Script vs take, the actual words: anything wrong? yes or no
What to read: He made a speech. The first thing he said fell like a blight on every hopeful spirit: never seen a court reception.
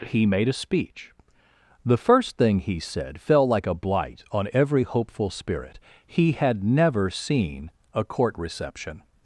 yes